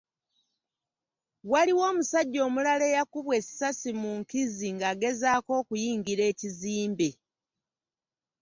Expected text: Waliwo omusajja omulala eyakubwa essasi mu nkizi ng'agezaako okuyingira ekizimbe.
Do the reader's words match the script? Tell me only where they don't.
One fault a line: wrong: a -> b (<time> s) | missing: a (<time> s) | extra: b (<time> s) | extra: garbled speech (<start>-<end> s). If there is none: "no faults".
no faults